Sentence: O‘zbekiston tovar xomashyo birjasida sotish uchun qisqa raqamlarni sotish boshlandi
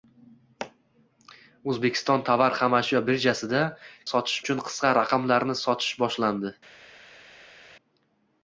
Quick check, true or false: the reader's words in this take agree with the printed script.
true